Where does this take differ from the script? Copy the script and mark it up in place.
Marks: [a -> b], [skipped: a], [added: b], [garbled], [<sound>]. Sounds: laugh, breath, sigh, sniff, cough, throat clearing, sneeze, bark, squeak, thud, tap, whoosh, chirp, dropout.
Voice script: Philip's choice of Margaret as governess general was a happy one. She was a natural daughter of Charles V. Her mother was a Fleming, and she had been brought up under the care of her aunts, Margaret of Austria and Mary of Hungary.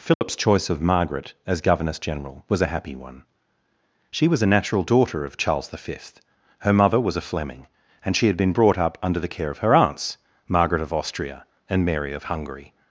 Philip's [dropout] choice of Margaret as governess general was a happy one. She was a natural daughter of Charles V. Her mother was a Fleming, and she had been brought up under the care of her aunts, Margaret of Austria and Mary of Hungary.